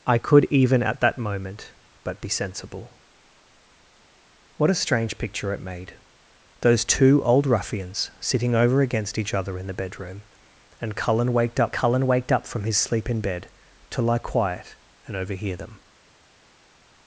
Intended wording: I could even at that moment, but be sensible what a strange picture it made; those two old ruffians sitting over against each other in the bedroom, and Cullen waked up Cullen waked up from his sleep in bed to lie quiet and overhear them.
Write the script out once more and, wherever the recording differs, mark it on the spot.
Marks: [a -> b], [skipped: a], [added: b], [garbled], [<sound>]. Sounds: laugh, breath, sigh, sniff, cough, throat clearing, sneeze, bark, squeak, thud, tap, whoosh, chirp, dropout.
I could even at that moment, but be sensible what a strange picture it made; those two old ruffians sitting over against each other in the bedroom, and Cullen waked up Cullen waked up from his sleep in bed to lie quiet and overhear them.